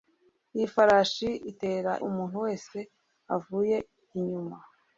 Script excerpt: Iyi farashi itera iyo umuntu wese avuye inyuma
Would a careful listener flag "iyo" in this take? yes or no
yes